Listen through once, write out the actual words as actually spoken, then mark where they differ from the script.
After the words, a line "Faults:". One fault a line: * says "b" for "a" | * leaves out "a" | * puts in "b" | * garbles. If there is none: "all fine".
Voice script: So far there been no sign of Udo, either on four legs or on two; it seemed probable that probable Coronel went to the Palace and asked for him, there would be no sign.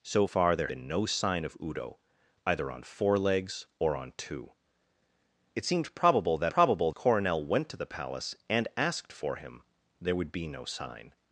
So far there been no sign of Udo, either on four legs or on two; it seemed probable that probable Coronel went to the Palace and asked for him, there would be no sign.
Faults:
all fine